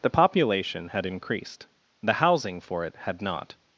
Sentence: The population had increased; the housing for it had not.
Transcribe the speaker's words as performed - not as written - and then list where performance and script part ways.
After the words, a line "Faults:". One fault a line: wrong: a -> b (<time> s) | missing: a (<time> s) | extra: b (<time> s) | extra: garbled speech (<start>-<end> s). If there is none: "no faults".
The population had increased; the housing for it had not.
Faults:
no faults